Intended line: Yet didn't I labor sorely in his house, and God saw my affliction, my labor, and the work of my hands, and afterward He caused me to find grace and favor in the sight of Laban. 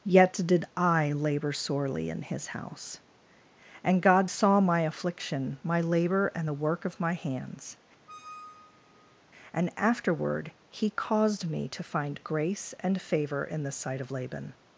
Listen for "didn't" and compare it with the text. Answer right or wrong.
wrong